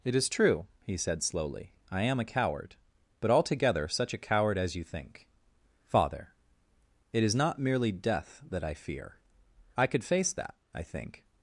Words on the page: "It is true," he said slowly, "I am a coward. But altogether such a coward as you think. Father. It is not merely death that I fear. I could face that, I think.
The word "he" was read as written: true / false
true